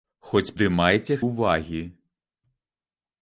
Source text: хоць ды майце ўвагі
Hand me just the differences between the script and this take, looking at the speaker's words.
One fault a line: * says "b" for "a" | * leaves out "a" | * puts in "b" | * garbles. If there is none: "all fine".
all fine